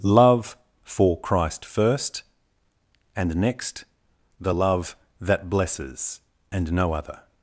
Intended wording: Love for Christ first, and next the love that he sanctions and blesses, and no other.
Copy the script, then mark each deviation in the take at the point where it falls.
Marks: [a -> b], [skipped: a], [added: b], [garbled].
Love for Christ first, and next the love that [skipped: he sanctions and] blesses, and no other.